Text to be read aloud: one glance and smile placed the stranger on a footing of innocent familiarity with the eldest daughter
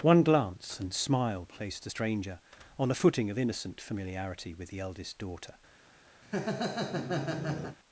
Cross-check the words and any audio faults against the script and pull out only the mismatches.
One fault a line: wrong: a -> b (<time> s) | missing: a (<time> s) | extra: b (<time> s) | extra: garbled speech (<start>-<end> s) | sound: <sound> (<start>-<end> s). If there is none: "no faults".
sound: laugh (6.2-7.8 s)